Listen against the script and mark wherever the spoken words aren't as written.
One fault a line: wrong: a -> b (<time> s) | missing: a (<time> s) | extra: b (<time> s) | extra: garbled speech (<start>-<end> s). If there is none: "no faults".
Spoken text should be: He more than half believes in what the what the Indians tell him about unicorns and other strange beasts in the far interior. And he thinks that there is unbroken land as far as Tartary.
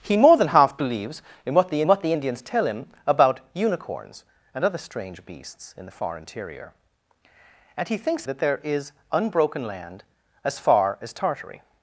no faults